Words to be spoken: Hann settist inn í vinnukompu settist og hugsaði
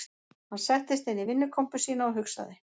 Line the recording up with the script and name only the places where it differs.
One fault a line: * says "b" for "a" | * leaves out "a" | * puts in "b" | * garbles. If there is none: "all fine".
* says "sína" for "settist"